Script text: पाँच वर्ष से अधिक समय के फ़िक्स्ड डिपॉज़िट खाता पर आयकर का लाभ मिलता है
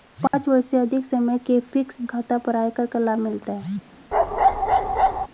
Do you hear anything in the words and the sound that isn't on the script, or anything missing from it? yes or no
yes